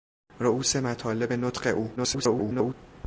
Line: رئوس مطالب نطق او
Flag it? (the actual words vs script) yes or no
yes